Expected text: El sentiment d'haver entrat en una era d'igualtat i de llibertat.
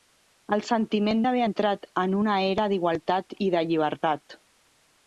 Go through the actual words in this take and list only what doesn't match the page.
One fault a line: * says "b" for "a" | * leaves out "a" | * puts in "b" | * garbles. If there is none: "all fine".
all fine